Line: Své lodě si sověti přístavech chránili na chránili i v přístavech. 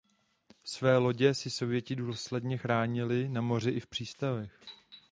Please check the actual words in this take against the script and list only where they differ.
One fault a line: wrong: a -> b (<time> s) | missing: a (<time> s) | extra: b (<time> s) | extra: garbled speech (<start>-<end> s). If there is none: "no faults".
wrong: přístavech -> důsledně (1.9 s)
wrong: chránili -> moři (3.4 s)